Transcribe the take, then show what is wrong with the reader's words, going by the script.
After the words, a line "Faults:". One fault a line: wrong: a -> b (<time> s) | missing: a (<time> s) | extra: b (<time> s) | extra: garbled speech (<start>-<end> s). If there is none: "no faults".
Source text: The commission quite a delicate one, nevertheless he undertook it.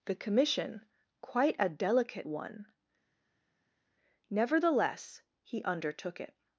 The commission quite a delicate one, nevertheless he undertook it.
Faults:
no faults